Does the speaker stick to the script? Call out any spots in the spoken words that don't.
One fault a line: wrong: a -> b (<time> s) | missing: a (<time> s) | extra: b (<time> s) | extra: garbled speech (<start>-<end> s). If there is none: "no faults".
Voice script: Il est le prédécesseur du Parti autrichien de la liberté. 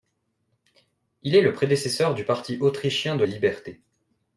missing: la (3.2 s)